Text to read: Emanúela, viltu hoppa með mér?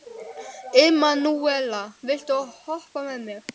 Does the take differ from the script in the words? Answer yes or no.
no